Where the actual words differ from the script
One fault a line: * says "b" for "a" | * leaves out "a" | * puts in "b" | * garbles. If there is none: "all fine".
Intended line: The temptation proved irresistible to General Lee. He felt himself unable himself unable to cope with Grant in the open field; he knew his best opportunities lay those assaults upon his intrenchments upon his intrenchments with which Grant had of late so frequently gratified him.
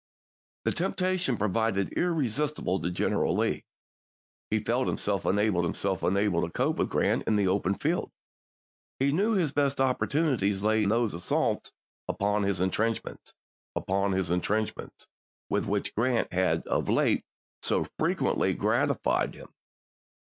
all fine